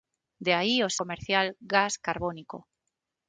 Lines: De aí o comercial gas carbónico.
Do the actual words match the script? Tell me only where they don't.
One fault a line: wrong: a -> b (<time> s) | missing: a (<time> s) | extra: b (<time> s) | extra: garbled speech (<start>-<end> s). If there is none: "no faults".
no faults